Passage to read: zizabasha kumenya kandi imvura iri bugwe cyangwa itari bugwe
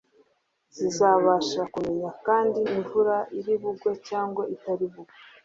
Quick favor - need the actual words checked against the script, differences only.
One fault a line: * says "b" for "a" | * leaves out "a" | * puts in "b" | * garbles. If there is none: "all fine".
all fine